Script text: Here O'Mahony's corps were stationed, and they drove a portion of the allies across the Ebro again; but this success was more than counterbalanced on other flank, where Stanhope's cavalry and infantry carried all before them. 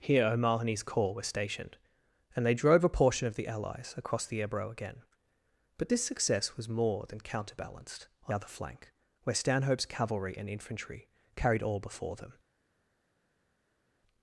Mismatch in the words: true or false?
false